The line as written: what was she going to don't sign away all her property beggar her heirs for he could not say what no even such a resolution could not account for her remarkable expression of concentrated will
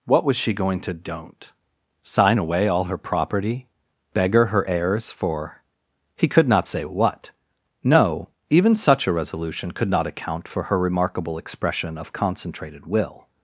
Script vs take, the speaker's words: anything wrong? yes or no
no